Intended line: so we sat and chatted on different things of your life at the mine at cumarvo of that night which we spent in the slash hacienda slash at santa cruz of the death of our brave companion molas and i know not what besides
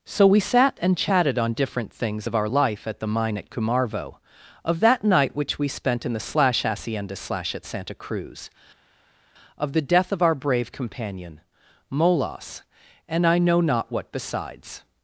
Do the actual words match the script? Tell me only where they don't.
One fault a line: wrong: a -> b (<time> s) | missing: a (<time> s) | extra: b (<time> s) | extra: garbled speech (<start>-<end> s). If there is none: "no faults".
wrong: your -> our (2.3 s)